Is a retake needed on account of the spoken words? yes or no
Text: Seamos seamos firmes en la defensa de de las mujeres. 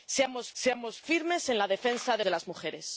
no